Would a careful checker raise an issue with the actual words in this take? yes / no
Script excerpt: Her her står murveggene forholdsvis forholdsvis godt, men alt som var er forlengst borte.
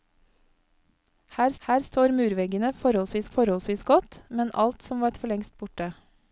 no